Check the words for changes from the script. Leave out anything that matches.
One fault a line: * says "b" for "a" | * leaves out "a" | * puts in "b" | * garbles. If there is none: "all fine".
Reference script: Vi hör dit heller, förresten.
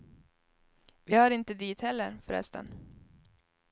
* puts in "inte"